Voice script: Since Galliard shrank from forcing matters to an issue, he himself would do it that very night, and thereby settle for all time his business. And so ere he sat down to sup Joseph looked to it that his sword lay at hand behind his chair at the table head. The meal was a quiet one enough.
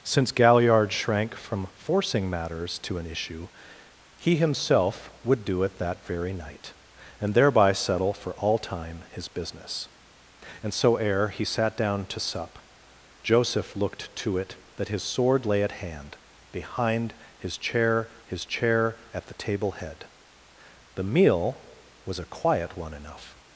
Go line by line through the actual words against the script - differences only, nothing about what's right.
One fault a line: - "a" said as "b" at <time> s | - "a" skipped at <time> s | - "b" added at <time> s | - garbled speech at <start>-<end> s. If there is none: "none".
- "his chair" added at 18.2 s